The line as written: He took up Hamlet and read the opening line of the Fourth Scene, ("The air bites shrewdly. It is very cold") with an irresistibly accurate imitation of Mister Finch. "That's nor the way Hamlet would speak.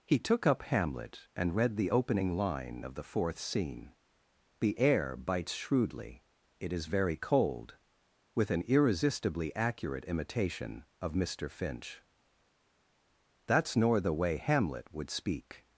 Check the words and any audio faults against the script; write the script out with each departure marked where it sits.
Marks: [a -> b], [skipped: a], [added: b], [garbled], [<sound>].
He took up Hamlet and read the opening line of the Fourth Scene, ("The air bites shrewdly. It is very cold") with an irresistibly accurate imitation of Mister Finch. "That's nor the way Hamlet would speak.